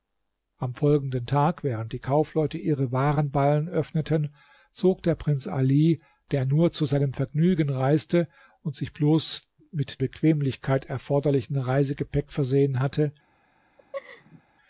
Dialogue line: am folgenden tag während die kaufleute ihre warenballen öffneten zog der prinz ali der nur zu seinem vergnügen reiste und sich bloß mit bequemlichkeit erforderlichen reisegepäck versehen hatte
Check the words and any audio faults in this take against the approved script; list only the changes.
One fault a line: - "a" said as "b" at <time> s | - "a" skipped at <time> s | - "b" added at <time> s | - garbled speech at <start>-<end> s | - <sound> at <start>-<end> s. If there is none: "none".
- laugh at 13.8-14.4 s